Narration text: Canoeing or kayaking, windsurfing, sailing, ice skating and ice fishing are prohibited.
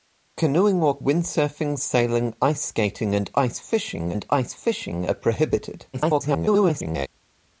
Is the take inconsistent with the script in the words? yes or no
yes